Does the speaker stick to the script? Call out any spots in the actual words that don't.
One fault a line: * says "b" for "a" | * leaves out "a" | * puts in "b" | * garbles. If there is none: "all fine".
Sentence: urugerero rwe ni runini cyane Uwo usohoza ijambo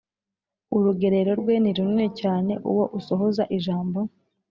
all fine